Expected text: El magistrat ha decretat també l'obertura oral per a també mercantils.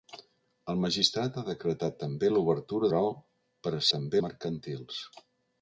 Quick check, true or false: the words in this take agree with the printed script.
true